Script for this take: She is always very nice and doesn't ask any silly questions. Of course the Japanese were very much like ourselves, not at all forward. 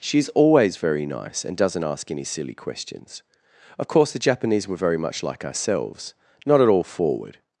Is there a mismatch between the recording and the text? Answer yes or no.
no